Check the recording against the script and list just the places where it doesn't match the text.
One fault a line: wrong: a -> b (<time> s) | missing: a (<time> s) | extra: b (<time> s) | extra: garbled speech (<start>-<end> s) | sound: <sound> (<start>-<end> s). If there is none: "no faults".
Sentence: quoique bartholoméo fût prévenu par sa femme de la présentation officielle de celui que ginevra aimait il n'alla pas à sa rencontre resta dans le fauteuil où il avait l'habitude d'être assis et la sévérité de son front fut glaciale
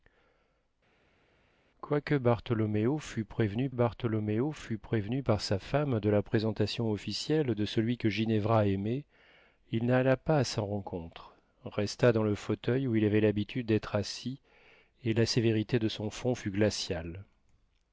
extra: bartholoméo fût prévenu (3.7 s)